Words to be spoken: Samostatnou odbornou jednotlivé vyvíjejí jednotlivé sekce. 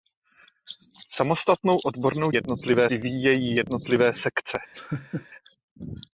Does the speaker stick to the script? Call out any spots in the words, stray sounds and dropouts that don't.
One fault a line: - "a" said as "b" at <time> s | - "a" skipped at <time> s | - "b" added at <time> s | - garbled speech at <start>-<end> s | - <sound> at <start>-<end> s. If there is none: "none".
- laugh at 4.7-5.3 s